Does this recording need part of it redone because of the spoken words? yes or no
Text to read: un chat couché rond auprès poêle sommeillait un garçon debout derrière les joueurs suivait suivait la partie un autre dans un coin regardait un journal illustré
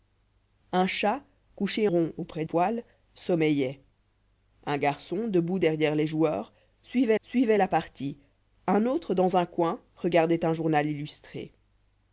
no